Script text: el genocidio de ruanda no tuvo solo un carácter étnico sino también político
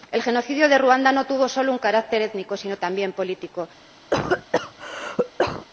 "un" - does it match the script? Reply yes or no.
yes